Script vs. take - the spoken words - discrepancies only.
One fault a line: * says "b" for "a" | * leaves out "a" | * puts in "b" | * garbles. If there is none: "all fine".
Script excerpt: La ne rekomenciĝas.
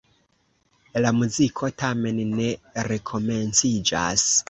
* puts in "muziko tamen"